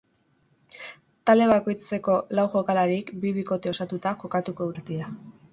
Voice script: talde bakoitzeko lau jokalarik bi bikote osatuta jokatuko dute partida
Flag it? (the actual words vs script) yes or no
yes